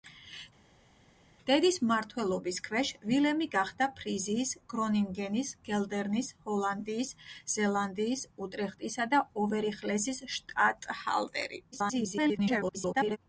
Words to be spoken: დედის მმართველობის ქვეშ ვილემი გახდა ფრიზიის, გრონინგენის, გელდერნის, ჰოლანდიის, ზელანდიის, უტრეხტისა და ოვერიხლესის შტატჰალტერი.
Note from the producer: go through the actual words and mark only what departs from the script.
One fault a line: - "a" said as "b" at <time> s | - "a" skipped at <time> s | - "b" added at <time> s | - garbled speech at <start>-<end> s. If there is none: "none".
- garbled speech at 11.7-13.2 s